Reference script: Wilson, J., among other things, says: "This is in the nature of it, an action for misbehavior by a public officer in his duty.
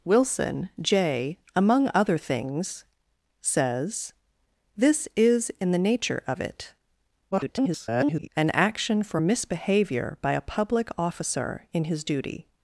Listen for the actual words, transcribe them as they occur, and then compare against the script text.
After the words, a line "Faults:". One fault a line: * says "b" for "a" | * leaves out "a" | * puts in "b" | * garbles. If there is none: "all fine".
Wilson, J., among other things, says: "This is in the nature of it, [garbled] an action for misbehavior by a public officer in his duty.
Faults:
* garbles